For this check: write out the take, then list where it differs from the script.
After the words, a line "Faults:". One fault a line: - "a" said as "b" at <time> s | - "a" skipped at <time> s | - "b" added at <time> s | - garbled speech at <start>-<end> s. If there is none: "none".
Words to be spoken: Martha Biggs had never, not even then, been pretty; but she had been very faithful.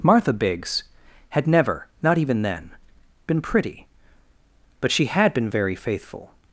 Martha Biggs had never, not even then, been pretty; but she had been very faithful.
Faults:
none